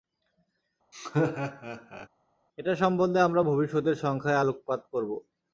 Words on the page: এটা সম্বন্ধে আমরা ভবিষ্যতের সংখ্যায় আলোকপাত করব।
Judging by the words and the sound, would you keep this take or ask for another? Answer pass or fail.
fail